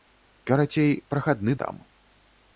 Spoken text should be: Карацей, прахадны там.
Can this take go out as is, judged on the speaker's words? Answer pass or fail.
pass